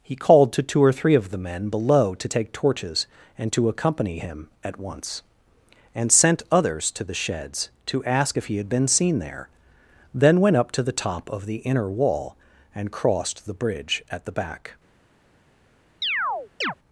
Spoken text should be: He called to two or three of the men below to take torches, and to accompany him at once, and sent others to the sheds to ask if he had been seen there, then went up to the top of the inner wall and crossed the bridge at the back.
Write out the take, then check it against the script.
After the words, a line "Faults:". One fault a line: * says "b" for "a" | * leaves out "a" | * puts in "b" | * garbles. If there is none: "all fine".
He called to two or three of the men below to take torches, and to accompany him at once, and sent others to the sheds to ask if he had been seen there, then went up to the top of the inner wall and crossed the bridge at the back.
Faults:
all fine